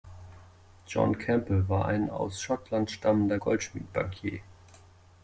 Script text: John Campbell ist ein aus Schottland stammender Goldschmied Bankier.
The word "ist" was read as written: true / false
false